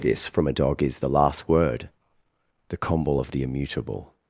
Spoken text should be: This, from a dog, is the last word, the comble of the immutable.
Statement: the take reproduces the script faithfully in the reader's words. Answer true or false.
true